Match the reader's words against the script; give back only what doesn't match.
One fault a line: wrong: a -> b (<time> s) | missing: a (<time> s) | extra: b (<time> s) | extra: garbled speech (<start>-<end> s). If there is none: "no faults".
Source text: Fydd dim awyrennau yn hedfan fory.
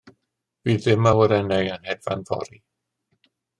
no faults